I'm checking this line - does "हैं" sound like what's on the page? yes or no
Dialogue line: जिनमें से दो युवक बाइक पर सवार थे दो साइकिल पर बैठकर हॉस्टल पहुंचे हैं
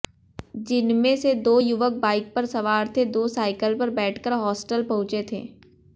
no